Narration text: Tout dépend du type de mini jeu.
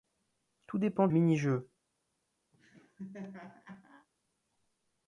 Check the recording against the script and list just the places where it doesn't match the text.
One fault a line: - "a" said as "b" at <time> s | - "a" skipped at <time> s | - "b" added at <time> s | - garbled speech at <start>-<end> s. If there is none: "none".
- "du type de" skipped at 1.1 s